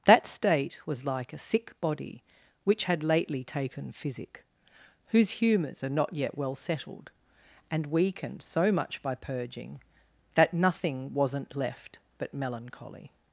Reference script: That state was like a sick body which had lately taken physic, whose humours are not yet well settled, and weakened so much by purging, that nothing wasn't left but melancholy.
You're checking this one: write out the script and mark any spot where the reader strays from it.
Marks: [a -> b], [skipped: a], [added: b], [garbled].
That state was like a sick body which had lately taken physic, whose humours are not yet well settled, and weakened so much by purging, that nothing wasn't left but melancholy.